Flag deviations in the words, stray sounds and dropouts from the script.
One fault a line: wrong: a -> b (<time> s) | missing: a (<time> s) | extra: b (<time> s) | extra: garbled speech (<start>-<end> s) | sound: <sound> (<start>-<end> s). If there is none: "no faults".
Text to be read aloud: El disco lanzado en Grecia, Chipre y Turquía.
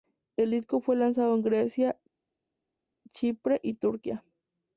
extra: fue (0.8 s)